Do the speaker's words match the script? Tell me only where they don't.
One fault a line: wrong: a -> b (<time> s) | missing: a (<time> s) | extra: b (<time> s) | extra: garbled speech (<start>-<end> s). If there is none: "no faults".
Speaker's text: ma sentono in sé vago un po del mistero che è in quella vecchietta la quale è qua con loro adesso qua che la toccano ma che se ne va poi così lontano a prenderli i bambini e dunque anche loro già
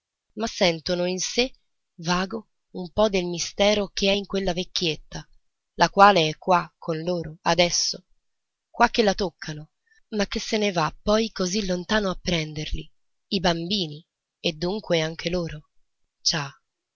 no faults